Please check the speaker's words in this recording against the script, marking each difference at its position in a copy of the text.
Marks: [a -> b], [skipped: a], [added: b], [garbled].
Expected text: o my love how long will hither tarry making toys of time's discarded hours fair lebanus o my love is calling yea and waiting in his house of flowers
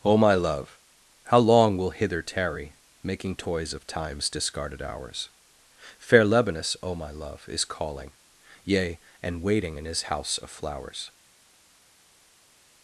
o my love how long will hither tarry making toys of time's discarded hours fair lebanus o my love is calling yea and waiting in his house of flowers